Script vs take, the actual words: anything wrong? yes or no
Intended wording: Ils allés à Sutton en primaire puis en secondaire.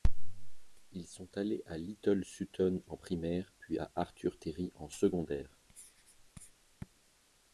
yes